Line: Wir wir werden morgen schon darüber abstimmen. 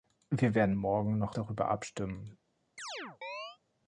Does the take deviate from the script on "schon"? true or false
true